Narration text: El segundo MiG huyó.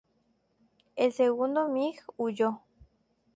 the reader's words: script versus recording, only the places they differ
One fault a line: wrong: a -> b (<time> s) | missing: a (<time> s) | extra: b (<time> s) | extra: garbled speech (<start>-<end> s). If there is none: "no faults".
no faults